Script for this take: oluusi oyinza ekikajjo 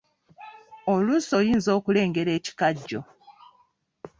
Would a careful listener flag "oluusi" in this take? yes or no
no